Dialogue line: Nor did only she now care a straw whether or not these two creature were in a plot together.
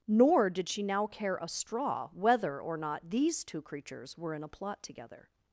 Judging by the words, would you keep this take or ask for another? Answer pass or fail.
fail